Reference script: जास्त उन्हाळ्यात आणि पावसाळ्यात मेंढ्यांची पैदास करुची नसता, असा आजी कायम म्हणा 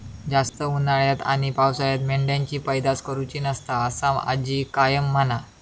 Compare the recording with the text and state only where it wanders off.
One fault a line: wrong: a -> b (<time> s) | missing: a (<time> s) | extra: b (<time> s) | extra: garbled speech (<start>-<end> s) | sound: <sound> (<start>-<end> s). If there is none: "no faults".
sound: dropout (0.5-0.5 s)